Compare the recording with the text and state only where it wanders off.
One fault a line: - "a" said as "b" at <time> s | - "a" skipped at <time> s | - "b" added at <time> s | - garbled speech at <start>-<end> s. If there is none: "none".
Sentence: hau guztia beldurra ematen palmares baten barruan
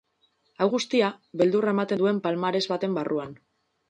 - "duen" added at 2.0 s